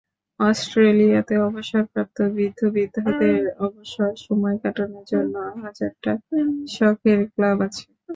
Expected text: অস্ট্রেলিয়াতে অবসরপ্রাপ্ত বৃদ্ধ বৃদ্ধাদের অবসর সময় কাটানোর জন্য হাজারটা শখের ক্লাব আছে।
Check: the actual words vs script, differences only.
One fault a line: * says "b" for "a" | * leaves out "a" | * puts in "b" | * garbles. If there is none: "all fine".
all fine